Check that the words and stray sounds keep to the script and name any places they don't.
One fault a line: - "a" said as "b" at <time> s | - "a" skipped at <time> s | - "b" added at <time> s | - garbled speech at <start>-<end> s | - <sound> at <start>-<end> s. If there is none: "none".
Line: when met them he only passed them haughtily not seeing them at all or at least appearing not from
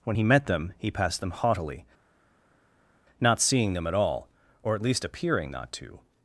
- "he" added at 0.1 s
- "only" skipped at 0.9 s
- "from" said as "to" at 5.7 s